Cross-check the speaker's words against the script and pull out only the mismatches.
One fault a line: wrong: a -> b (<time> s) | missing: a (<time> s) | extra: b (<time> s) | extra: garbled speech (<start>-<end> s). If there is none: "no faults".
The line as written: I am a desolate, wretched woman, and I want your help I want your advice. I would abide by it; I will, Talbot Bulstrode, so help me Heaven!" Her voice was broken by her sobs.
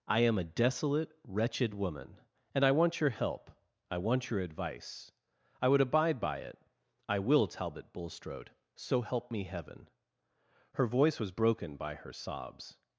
no faults